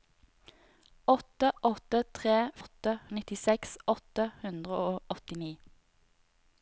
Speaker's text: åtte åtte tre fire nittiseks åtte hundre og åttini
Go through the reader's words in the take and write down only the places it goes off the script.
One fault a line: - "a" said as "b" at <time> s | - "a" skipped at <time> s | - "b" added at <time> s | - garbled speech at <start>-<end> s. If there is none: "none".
- "fire" said as "åtte" at 2.6 s